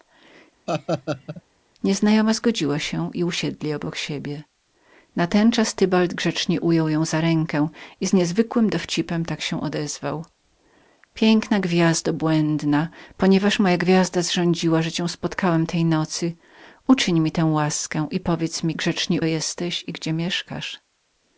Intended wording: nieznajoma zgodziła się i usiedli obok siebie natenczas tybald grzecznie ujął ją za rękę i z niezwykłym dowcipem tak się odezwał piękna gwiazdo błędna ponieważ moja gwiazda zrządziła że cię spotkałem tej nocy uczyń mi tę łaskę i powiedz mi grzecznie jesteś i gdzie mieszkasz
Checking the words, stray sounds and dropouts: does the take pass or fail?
fail